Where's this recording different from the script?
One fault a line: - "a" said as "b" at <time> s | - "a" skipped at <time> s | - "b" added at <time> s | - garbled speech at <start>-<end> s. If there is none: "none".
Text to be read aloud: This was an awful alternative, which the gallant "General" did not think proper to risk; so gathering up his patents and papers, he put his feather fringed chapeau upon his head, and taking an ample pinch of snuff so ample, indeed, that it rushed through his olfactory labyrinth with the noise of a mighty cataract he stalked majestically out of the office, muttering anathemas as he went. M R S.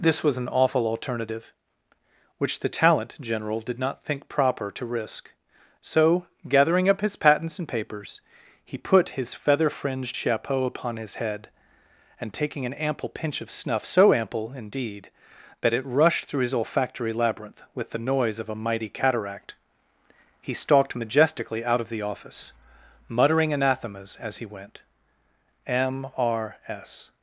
- "gallant" said as "talent" at 2.7 s